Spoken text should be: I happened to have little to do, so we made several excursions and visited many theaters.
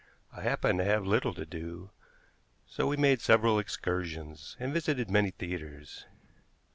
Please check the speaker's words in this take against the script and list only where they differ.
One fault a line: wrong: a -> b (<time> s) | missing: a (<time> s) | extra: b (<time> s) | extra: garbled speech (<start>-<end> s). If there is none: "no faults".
no faults